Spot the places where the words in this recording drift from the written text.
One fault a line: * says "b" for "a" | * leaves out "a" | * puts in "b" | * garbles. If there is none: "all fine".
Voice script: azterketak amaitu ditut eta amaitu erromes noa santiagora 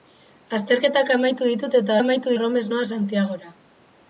all fine